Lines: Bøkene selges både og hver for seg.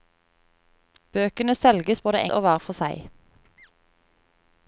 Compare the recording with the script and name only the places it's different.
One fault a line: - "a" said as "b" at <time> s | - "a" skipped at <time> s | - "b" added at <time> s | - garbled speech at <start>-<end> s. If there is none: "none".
none